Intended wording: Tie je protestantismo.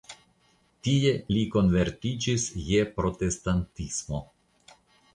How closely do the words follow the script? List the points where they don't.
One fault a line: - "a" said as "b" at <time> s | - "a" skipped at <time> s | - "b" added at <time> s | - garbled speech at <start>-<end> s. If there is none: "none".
- "li konvertiĝis" added at 1.4 s